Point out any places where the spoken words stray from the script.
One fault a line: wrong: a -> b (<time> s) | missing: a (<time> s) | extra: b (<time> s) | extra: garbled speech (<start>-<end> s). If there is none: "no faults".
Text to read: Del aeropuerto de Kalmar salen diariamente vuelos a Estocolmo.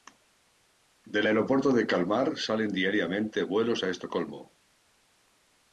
no faults